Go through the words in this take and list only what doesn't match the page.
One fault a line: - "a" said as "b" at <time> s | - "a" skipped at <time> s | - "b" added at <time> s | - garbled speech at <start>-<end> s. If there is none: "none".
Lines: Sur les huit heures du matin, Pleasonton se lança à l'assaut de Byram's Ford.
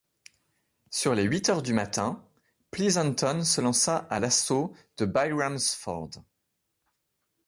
none